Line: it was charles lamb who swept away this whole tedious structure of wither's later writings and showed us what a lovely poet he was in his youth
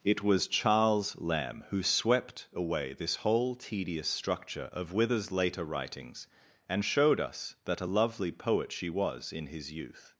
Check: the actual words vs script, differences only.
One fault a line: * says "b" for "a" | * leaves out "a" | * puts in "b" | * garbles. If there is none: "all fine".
* says "that" for "what"
* says "she" for "he"